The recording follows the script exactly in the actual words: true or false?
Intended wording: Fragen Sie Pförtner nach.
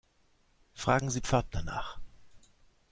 true